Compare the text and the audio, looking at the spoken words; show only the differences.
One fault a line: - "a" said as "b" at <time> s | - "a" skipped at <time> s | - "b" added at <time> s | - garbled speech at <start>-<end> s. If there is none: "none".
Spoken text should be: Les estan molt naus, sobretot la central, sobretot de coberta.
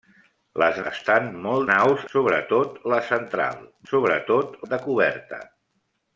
none